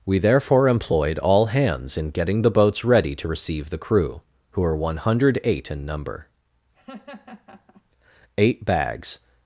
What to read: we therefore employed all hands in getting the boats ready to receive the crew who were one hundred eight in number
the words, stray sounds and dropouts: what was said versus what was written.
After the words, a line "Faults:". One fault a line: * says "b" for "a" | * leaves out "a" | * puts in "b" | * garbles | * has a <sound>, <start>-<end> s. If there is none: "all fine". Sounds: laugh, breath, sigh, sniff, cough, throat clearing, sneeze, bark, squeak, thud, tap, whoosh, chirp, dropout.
we therefore employed all hands in getting the boats ready to receive the crew who were one hundred eight in number eight bags
Faults:
* has a laugh, 6.7-7.8 s
* puts in "eight bags"